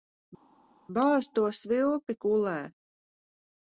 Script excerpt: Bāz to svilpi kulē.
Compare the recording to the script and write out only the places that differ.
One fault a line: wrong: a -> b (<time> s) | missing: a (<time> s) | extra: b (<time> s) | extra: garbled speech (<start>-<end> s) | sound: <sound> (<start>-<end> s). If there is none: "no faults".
no faults